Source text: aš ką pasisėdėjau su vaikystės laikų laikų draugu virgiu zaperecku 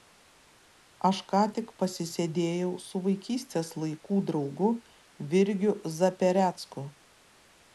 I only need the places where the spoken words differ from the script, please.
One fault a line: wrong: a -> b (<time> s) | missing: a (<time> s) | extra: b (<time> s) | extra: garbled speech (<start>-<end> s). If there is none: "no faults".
extra: tik (1.6 s)
missing: laikų (4.2 s)